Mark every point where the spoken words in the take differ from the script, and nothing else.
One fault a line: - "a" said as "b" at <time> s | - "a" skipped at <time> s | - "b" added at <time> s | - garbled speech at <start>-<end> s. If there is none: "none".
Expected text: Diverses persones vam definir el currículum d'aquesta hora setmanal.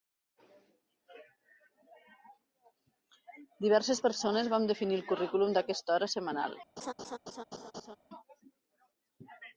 none